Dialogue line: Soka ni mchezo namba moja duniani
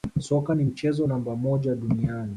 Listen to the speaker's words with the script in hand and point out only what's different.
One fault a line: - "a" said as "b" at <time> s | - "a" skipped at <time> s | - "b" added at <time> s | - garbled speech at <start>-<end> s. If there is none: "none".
none